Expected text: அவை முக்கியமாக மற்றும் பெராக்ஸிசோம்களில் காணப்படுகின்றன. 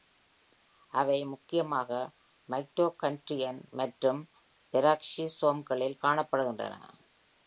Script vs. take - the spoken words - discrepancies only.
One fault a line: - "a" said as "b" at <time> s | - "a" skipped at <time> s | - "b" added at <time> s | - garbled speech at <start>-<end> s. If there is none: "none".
- "மைட்டோகாண்ட்ரியன்" added at 2.5 s